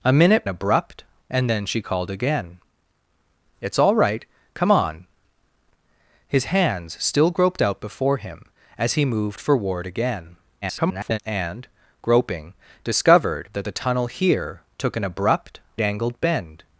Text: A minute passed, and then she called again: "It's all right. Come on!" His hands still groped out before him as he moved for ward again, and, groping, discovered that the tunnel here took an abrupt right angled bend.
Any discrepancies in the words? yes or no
yes